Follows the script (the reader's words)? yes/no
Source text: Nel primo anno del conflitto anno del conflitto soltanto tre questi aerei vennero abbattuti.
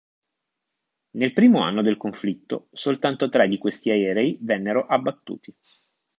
no